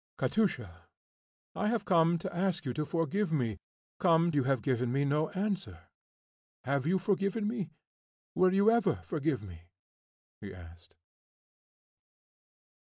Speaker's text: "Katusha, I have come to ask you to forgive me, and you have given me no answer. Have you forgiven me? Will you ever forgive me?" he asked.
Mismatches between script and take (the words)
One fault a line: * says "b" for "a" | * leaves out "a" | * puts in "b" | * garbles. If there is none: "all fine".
* says "come" for "and"